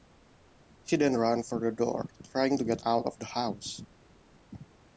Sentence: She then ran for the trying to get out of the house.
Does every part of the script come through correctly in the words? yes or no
no